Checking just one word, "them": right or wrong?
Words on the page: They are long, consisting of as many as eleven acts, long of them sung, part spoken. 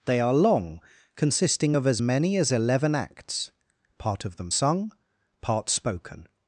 right